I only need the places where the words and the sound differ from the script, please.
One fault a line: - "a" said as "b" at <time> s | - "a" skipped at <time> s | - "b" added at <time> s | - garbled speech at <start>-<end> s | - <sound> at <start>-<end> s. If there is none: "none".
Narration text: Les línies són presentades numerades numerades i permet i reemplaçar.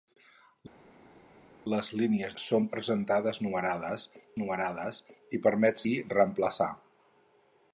none